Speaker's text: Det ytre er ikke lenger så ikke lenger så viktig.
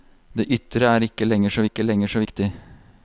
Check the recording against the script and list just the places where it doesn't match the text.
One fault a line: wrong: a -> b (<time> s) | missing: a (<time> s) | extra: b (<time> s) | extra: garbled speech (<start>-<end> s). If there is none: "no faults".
no faults